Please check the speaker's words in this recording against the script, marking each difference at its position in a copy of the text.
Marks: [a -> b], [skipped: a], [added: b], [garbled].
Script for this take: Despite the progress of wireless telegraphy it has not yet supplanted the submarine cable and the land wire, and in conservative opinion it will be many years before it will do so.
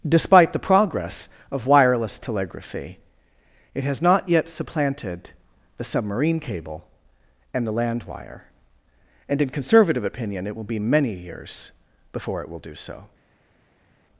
Despite the progress of wireless telegraphy it has not yet supplanted the submarine cable and the land wire, and in conservative opinion it will be many years before it will do so.